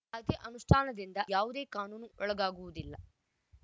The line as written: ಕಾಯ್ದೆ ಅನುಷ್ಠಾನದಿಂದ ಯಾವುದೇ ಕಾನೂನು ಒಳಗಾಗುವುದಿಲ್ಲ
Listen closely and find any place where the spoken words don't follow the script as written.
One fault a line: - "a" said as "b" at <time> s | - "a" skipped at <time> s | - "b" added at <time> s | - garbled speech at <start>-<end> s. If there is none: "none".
none